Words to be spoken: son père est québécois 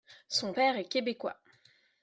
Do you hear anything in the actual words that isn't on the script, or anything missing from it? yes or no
no